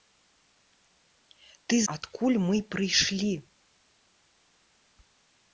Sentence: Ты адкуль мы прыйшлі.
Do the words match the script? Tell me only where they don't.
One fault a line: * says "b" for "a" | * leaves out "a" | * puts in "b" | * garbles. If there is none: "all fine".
all fine